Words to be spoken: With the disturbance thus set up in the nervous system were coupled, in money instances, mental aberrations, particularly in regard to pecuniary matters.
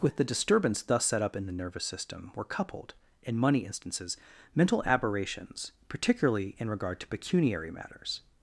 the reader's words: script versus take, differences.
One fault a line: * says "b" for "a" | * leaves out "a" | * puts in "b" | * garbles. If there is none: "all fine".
all fine